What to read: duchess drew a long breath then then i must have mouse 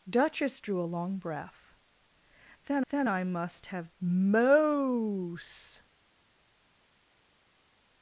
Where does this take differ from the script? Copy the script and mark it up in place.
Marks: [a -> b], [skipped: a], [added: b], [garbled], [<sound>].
duchess drew a long breath then then i must have mouse